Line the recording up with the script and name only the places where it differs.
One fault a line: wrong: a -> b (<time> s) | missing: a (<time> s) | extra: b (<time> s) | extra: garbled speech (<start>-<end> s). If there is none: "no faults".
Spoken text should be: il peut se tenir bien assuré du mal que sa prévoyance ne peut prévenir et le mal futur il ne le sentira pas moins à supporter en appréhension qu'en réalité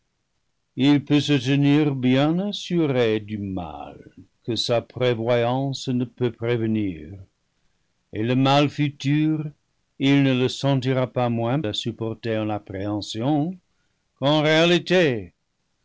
no faults